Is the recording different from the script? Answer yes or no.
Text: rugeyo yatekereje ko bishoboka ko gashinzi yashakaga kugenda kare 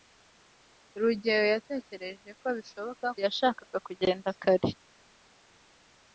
yes